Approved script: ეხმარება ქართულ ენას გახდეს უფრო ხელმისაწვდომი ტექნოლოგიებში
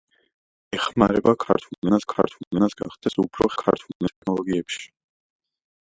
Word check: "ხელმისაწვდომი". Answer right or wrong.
wrong